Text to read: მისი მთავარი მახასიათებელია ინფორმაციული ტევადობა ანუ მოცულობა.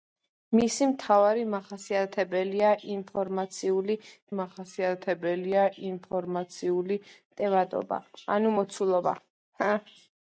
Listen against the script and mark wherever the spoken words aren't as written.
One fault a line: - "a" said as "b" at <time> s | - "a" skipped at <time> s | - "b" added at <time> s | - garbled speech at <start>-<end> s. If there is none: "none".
- "მახასიათებელია ინფორმაციული" added at 4.4 s